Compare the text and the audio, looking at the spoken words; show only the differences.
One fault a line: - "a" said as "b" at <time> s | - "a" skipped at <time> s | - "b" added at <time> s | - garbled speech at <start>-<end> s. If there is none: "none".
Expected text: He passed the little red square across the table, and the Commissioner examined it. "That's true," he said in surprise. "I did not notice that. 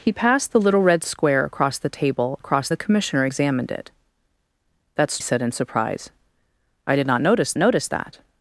- "and" said as "across" at 2.4 s
- "true he" skipped at 5.2 s
- "notice" added at 7.6 s